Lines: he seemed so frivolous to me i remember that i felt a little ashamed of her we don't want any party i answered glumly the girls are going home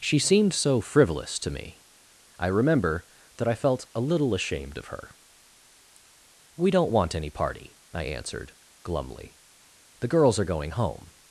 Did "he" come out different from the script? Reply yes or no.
yes